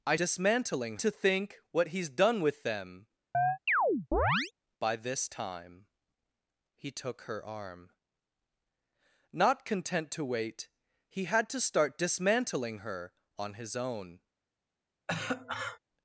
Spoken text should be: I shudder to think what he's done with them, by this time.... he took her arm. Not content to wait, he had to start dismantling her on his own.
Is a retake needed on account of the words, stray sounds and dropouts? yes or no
yes